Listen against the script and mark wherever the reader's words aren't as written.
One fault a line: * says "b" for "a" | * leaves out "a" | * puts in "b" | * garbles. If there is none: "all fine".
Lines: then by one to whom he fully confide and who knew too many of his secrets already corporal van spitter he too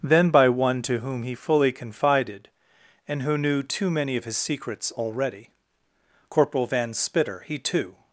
* says "confided" for "confide"